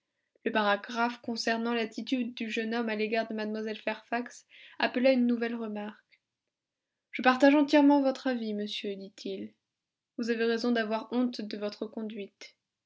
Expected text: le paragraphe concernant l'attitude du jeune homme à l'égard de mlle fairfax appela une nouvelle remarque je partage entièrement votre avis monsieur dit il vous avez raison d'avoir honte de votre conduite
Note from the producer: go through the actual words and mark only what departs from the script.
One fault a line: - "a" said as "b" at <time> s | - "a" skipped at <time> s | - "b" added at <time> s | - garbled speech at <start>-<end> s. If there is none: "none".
none